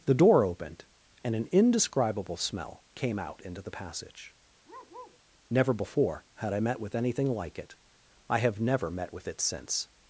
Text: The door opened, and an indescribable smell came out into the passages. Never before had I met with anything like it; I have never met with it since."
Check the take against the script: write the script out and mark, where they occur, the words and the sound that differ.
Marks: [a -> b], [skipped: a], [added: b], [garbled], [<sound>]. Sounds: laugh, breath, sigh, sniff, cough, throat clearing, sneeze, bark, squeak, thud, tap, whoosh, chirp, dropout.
The door opened, and an indescribable smell came out into the [passages. -> passage] [bark] Never before had I met with anything like it; I have never met with it since."